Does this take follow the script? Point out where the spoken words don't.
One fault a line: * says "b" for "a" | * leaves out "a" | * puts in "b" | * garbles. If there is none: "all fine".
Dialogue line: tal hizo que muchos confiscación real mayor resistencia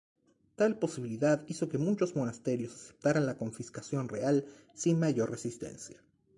* puts in "posibilidad"
* puts in "monasterios aceptaran la"
* puts in "sin"